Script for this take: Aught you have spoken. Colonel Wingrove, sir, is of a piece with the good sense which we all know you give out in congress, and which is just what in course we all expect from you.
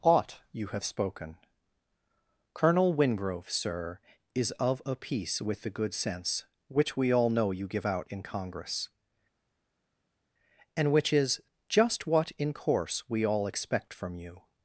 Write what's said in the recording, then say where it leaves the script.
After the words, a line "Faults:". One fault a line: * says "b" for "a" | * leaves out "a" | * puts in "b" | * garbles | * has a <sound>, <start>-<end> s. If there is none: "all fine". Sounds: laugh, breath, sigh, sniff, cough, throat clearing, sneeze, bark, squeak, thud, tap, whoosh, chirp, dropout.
Aught you have spoken. Colonel Wingrove, sir, is of a piece with the good sense which we all know you give out in congress, and which is just what in course we all expect from you.
Faults:
all fine